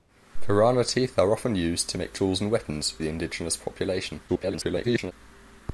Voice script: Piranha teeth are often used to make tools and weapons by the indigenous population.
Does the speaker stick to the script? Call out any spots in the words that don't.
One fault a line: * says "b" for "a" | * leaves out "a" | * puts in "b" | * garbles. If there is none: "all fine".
* leaves out "by"
* garbles